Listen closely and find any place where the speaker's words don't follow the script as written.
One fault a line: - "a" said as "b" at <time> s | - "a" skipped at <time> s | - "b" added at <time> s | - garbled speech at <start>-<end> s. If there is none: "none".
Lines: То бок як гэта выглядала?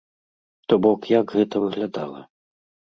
none